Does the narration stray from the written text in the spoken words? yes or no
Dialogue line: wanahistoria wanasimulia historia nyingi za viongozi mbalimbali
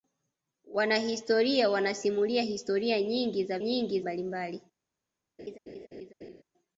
yes